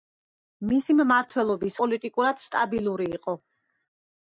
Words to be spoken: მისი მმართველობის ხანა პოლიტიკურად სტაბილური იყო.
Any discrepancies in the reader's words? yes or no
yes